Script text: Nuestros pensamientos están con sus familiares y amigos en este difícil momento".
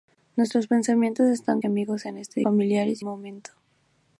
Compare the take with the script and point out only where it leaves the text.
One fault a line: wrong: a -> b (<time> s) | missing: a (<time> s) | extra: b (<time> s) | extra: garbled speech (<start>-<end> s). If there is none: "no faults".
missing: con sus familiares (1.6 s)
wrong: difícil -> familiares (2.4 s)